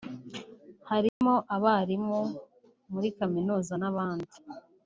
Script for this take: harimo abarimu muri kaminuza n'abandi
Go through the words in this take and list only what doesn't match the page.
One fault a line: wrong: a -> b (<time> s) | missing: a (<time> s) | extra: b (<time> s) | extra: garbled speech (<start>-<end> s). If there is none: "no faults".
no faults